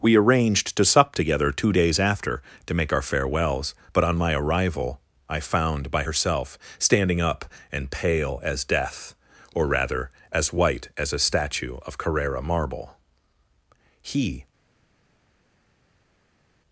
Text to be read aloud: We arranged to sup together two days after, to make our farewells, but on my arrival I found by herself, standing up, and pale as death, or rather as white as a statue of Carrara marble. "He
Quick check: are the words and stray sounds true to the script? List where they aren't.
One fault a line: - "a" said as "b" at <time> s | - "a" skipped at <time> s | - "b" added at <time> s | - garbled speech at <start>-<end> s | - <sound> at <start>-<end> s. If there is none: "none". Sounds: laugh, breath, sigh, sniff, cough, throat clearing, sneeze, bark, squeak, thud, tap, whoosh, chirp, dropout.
none